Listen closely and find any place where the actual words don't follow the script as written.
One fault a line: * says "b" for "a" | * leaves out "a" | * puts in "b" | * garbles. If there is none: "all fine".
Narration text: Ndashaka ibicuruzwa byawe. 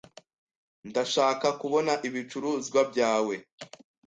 * puts in "kubona"